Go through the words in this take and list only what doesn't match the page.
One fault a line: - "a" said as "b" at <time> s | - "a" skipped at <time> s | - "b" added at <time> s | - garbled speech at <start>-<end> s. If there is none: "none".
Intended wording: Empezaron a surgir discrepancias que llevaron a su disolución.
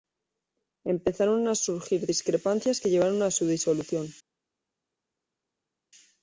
none